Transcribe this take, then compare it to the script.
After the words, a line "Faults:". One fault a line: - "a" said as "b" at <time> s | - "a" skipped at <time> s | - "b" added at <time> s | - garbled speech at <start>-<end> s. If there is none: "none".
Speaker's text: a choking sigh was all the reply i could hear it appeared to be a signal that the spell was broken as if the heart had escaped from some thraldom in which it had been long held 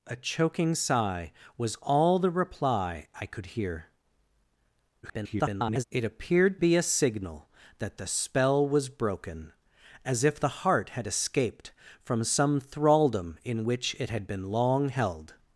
a choking sigh was all the reply i could hear [garbled] it appeared be a signal that the spell was broken as if the heart had escaped from some thraldom in which it had been long held
Faults:
- garbled speech at 5.0-5.8 s
- "to" skipped at 6.6 s